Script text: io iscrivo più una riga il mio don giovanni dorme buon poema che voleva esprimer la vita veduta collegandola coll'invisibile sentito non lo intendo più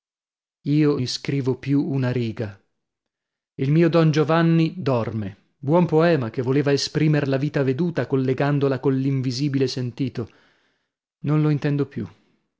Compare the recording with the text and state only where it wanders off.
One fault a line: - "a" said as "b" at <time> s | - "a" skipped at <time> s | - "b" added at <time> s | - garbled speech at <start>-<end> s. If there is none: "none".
none